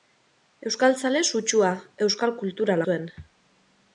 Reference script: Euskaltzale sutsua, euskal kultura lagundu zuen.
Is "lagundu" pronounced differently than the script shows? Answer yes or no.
yes